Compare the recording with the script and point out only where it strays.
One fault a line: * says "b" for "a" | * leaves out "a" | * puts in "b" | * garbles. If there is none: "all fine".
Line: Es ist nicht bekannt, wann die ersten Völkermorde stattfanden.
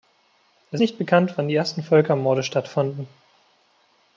* leaves out "ist"